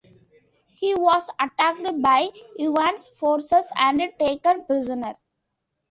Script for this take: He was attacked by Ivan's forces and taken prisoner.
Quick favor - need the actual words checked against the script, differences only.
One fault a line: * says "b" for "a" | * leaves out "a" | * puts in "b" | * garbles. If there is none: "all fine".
all fine